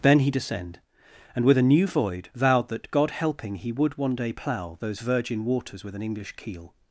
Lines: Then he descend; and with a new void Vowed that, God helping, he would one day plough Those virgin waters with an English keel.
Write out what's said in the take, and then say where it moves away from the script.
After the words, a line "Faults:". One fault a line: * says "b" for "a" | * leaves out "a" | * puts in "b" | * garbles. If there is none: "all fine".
Then he descend; and with a new void Vowed that, God helping, he would one day plough Those virgin waters with an English keel.
Faults:
all fine